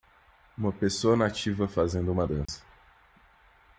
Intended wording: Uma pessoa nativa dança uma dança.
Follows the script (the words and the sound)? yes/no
no